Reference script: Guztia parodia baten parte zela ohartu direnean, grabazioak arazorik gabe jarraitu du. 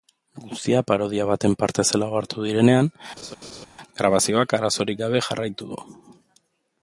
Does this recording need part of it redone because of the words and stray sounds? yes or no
yes